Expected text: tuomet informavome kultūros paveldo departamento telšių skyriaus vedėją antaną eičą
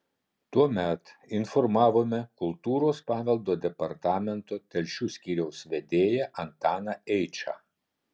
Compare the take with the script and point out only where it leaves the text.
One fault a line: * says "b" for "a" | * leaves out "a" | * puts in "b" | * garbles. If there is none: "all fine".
all fine